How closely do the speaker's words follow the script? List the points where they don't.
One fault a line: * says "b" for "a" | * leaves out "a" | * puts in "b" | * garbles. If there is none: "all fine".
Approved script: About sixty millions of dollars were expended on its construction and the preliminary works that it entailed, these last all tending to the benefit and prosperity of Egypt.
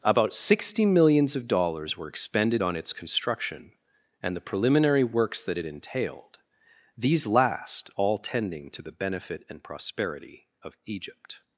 all fine